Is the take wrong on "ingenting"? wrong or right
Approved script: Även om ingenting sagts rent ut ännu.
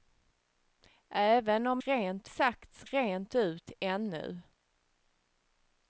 wrong